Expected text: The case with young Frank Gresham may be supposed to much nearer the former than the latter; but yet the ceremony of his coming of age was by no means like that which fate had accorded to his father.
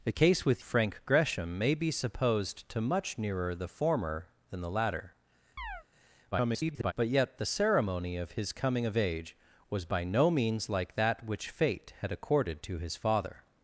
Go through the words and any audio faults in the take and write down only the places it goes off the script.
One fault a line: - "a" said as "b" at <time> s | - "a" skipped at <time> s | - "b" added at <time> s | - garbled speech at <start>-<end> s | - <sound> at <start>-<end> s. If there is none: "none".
- "young" skipped at 0.6 s
- chirp at 5.6-5.8 s
- garbled speech at 6.3-6.9 s